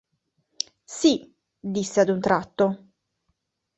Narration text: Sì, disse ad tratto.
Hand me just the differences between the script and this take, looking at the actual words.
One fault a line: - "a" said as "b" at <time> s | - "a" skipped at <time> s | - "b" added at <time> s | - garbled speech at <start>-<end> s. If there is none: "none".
- "un" added at 2.1 s